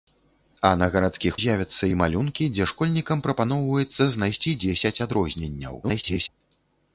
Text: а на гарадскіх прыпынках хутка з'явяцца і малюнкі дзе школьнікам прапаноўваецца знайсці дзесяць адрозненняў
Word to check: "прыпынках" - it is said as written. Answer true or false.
false